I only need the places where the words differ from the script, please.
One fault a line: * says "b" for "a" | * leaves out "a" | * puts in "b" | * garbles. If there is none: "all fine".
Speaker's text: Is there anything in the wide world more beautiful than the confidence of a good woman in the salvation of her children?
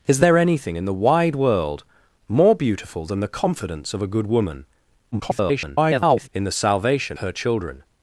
* garbles
* leaves out "of"